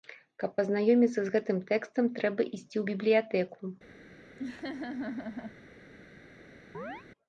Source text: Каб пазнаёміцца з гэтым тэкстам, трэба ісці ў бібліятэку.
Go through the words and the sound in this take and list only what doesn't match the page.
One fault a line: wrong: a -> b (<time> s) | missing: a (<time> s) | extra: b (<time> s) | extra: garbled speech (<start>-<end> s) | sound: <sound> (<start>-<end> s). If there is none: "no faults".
sound: laugh (4.4-5.6 s)
sound: chirp (6.7-7.0 s)